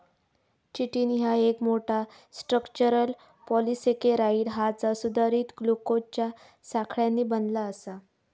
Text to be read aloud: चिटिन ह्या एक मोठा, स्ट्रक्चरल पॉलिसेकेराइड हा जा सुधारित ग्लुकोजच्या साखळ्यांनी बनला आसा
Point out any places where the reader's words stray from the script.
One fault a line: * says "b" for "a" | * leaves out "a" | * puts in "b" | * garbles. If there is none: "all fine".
all fine